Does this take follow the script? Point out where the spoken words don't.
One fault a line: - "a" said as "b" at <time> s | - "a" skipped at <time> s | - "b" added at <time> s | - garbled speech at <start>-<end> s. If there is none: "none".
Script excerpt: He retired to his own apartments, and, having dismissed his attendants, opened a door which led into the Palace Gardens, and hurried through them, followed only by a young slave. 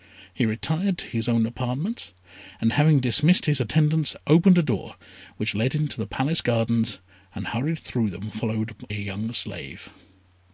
- "only by" skipped at 8.7 s